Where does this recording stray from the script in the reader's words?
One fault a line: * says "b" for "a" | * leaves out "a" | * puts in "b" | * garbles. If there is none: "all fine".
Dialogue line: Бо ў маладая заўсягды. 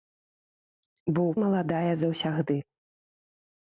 all fine